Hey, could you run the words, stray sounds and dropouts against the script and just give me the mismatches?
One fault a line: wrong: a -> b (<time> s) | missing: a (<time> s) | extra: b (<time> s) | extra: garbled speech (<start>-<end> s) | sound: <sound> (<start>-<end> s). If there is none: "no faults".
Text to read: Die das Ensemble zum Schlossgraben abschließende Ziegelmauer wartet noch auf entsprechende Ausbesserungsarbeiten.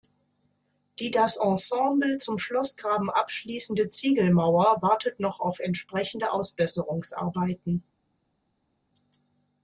no faults